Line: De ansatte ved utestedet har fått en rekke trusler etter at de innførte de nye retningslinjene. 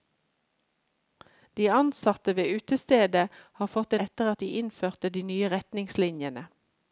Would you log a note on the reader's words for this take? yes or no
yes